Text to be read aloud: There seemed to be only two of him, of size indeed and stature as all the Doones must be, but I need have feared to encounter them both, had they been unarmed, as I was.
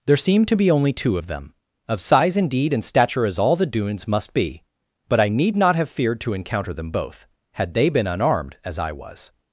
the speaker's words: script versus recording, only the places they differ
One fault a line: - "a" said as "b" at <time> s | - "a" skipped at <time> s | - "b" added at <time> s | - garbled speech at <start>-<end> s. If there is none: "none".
- "him" said as "them" at 1.3 s
- "not" added at 5.6 s